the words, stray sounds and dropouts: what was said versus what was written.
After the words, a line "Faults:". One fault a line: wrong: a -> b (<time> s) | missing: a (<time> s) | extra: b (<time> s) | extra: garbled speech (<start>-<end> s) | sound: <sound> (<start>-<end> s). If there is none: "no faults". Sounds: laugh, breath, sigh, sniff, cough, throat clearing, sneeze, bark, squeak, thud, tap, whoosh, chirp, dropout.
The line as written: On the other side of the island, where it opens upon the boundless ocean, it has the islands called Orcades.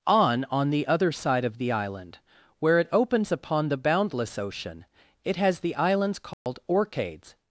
On on the other side of the island, where it opens upon the boundless ocean, it has the islands called Orcades.
Faults:
extra: on (0.5 s)
sound: dropout (6.3-6.5 s)